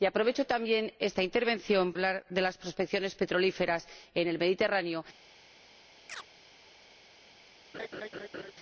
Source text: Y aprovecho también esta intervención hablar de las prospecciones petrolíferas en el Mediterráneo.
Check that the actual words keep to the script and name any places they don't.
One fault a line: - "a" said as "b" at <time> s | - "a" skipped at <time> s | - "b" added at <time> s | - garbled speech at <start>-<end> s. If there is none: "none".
none